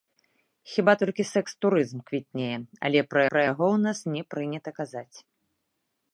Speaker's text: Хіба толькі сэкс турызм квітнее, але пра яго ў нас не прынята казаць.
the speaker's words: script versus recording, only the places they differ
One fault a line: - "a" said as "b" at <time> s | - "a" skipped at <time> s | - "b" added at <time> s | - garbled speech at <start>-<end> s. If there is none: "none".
- "пра" added at 3.3 s